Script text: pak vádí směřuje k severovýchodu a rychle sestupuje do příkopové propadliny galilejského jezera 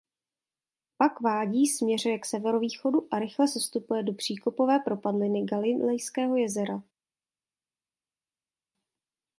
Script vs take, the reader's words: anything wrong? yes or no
no